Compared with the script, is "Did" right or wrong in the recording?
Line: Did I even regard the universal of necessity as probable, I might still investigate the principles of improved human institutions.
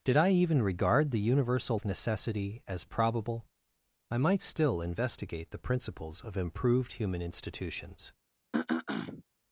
right